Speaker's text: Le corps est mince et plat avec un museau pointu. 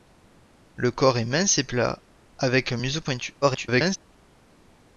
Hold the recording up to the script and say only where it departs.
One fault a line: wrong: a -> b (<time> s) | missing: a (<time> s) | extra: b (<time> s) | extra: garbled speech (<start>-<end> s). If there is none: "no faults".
extra: garbled speech (3.4-4.0 s)